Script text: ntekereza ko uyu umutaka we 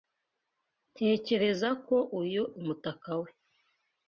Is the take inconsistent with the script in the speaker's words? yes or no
no